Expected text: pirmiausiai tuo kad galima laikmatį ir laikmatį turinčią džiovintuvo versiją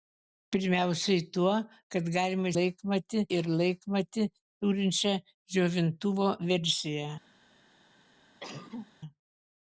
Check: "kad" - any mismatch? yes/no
no